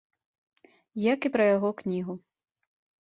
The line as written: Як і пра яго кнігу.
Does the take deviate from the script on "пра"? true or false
false